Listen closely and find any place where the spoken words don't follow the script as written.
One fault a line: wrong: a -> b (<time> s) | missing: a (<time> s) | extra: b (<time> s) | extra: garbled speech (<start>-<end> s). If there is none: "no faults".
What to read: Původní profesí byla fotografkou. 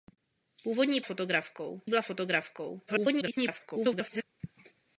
wrong: profesí -> fotografkou (1.0 s)
extra: garbled speech (2.9-4.2 s)